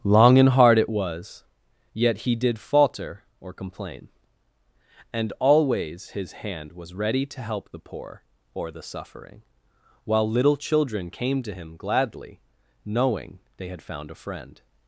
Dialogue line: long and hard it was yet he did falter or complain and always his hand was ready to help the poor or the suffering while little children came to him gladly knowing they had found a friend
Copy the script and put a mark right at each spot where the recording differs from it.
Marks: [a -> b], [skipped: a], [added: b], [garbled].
long and hard it was yet he did falter or complain and always his hand was ready to help the poor or the suffering while little children came to him gladly knowing they had found a friend